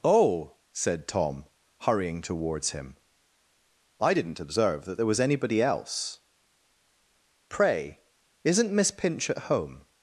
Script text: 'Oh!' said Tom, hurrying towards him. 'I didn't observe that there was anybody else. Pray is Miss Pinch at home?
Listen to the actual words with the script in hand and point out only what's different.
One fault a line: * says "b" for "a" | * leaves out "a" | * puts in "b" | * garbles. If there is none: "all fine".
* says "isn't" for "is"